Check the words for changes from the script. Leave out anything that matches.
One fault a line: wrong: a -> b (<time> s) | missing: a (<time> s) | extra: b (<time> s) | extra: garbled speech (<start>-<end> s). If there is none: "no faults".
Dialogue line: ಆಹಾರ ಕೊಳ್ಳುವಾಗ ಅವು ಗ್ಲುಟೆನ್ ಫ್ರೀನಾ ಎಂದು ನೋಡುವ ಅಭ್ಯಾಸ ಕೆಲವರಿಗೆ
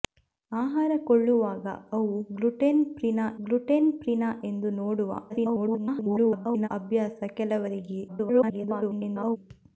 extra: ಗ್ಲುಟೆನ್ ಫ್ರೀನಾ (3.4 s)
extra: garbled speech (5.3-6.7 s)
extra: garbled speech (8.1-9.4 s)